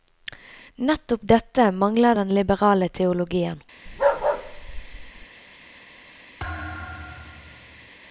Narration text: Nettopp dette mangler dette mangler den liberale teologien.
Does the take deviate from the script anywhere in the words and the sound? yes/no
yes